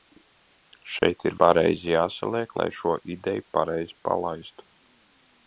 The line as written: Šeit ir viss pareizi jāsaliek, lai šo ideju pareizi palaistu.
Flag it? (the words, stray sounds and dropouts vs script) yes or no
yes